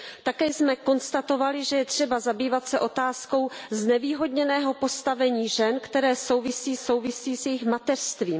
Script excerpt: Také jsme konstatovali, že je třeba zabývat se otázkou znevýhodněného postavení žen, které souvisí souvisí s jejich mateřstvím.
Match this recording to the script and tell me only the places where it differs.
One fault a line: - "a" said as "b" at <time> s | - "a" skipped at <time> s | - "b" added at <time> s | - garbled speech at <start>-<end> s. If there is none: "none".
none